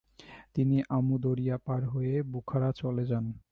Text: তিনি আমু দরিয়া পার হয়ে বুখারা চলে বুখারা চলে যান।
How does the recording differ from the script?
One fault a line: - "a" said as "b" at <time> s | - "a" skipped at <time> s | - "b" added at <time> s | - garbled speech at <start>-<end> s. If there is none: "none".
- "বুখারা চলে" skipped at 3.0 s